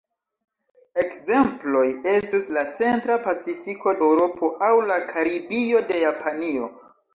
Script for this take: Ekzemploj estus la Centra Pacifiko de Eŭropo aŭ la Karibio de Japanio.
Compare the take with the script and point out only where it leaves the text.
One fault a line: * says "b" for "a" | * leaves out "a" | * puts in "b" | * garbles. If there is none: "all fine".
* leaves out "de"